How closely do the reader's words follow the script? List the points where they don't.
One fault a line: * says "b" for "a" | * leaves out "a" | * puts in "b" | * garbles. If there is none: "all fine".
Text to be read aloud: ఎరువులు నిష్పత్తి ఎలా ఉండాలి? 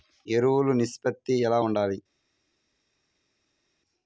all fine